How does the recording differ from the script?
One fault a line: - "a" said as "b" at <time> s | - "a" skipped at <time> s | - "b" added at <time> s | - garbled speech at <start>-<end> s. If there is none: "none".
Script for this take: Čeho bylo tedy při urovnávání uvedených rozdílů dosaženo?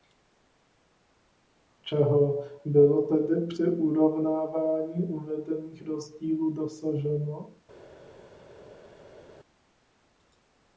none